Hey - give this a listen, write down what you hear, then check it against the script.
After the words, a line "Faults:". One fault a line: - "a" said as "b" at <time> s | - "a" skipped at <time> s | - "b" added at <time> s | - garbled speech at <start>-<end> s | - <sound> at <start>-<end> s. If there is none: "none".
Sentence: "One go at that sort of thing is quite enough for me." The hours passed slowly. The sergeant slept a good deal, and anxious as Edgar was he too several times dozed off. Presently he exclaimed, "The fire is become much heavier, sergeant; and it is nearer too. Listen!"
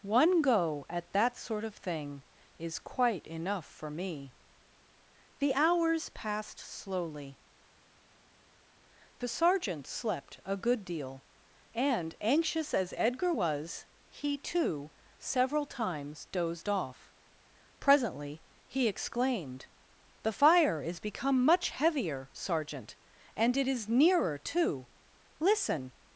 "One go at that sort of thing is quite enough for me." The hours passed slowly. The sergeant slept a good deal, and anxious as Edgar was he too several times dozed off. Presently he exclaimed, "The fire is become much heavier, sergeant; and it is nearer too. Listen!"
Faults:
none